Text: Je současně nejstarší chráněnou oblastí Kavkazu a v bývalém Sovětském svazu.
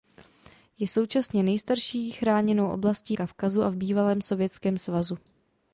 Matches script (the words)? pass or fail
pass